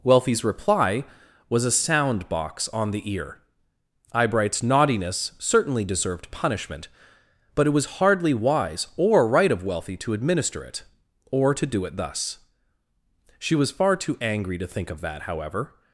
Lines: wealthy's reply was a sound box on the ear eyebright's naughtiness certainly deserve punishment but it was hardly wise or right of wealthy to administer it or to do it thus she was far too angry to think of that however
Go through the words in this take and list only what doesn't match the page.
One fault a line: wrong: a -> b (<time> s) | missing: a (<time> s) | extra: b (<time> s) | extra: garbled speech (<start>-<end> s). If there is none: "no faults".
wrong: deserve -> deserved (5.8 s)